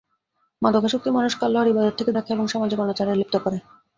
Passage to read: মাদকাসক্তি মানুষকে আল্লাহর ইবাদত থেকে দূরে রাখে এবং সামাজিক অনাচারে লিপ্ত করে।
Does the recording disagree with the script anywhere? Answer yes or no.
yes